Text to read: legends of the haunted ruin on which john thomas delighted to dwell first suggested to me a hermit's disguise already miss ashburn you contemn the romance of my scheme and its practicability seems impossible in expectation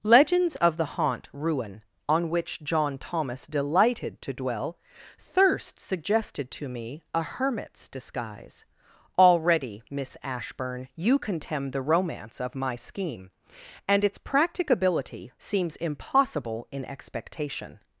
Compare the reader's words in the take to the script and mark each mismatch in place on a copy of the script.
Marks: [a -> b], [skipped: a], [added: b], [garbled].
legends of the [haunted -> haunt] ruin on which john thomas delighted to dwell [first -> thirst] suggested to me a hermit's disguise already miss ashburn you contemn the romance of my scheme and its practicability seems impossible in expectation